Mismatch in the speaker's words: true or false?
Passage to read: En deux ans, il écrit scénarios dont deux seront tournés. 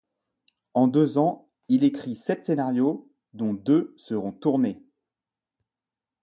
true